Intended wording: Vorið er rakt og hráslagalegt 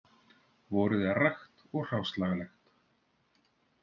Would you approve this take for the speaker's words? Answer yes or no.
yes